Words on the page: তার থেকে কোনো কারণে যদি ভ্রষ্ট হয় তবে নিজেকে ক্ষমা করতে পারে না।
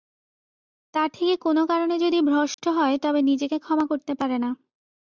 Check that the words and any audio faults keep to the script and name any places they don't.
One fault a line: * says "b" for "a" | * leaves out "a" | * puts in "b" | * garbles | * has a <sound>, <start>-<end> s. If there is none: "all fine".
* has a dropout, 2.5-2.6 s